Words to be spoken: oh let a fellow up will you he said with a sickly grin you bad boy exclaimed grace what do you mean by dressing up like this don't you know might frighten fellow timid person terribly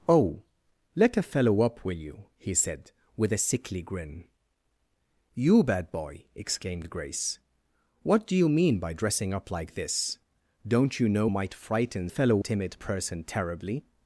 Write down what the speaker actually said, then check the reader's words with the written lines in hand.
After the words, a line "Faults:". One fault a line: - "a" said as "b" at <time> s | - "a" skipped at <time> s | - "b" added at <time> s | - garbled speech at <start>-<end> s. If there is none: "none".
oh let a fellow up will you he said with a sickly grin you bad boy exclaimed grace what do you mean by dressing up like this don't you know might frighten fellow timid person terribly
Faults:
none